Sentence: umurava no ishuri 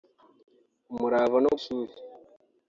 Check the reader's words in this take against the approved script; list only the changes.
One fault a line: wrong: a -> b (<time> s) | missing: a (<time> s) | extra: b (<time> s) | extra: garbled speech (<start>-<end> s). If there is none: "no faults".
no faults